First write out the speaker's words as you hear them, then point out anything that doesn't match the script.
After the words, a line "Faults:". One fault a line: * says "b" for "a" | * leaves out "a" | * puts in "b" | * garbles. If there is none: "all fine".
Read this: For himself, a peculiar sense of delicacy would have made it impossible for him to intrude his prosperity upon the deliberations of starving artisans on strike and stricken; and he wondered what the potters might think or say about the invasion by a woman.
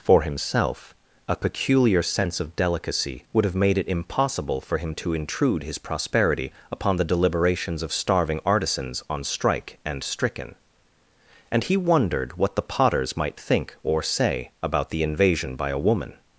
For himself, a peculiar sense of delicacy would have made it impossible for him to intrude his prosperity upon the deliberations of starving artisans on strike and stricken; and he wondered what the potters might think or say about the invasion by a woman.
Faults:
all fine